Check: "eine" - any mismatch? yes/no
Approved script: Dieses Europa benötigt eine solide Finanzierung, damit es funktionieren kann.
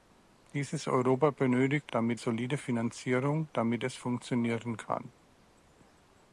yes